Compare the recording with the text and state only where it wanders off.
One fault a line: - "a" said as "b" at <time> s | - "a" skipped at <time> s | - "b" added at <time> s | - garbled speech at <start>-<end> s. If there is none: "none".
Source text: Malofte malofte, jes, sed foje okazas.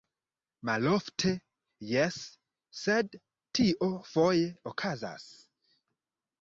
- "malofte" skipped at 1.3 s
- "tio" added at 3.6 s